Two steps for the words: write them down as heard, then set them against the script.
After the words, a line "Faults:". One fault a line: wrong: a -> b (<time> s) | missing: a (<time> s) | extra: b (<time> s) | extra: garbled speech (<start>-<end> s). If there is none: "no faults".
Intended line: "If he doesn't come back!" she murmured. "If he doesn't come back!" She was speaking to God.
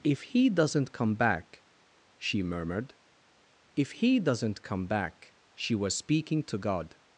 "If he doesn't come back!" she murmured. "If he doesn't come back!" She was speaking to God.
Faults:
no faults